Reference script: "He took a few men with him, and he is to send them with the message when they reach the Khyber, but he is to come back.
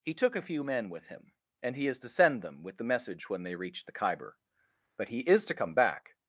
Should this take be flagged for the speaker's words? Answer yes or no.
no